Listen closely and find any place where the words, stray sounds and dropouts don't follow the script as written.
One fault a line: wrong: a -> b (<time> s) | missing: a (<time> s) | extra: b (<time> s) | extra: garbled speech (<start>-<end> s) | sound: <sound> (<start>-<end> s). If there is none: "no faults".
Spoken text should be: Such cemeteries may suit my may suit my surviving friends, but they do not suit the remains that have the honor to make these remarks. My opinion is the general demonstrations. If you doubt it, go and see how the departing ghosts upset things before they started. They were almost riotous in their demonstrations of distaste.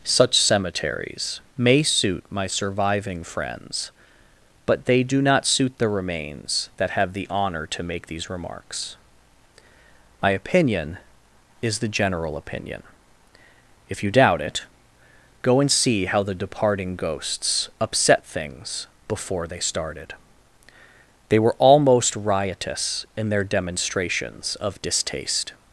missing: may suit my (2.5 s)
wrong: demonstrations -> opinion (12.4 s)